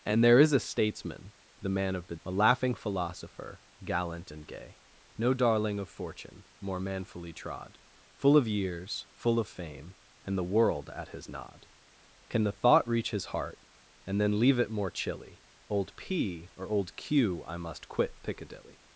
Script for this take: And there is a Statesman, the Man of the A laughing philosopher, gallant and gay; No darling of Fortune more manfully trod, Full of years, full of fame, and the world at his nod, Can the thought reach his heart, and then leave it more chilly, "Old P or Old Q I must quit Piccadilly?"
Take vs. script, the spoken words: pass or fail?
pass